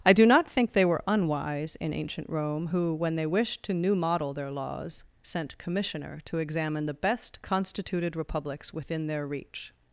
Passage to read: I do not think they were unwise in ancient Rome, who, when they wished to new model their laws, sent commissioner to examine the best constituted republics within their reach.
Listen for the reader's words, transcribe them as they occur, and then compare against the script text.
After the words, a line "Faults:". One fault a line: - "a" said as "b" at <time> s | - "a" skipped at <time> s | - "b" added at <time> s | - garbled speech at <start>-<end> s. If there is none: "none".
I do not think they were unwise in ancient Rome, who, when they wished to new model their laws, sent commissioner to examine the best constituted republics within their reach.
Faults:
none